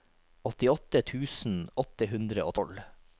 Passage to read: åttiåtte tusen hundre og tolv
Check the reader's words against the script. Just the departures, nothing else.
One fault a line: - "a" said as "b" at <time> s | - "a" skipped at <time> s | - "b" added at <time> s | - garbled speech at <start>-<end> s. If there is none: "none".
- "åtte" added at 1.8 s